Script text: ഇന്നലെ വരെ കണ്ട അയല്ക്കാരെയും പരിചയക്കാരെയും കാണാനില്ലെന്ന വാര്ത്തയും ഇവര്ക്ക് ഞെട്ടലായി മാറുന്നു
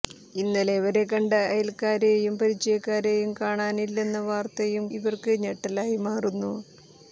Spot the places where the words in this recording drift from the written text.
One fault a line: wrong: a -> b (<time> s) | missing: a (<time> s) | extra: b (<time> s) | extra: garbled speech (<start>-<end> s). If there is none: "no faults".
no faults